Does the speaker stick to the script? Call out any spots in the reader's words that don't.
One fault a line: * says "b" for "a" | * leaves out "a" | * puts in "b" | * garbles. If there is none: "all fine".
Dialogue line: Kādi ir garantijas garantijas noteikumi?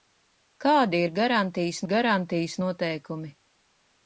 all fine